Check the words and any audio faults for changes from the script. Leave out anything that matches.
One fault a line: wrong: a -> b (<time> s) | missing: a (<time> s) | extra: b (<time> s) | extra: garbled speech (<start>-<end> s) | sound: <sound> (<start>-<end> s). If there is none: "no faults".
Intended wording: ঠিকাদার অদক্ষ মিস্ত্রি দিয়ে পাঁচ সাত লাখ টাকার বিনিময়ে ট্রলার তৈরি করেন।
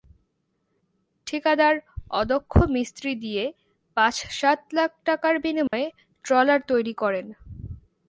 sound: dropout (5.7-5.7 s)